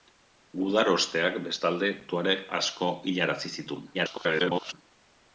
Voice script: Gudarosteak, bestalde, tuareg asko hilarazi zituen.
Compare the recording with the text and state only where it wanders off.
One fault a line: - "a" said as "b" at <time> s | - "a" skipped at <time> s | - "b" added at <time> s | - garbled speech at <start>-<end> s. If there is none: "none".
- garbled speech at 3.9-4.7 s